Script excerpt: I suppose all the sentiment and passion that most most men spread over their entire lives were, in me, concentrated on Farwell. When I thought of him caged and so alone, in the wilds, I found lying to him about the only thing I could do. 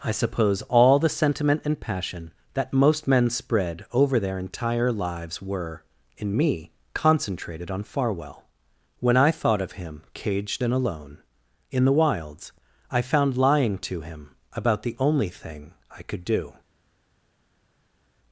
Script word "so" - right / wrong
wrong